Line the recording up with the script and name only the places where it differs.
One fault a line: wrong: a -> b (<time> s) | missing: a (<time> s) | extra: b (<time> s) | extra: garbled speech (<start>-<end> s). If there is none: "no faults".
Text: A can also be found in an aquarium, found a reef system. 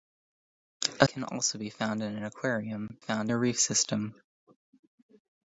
no faults